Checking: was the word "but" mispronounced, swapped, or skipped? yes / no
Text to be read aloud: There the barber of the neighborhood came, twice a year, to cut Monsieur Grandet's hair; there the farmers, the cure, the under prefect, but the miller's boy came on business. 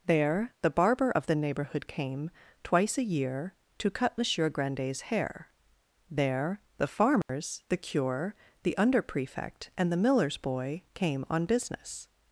yes